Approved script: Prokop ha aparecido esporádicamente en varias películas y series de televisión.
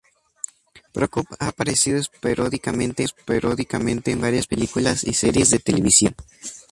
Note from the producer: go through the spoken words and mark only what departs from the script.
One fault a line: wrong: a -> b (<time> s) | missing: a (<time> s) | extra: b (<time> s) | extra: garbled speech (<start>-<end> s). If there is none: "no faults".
extra: esporádicamente (3.0 s)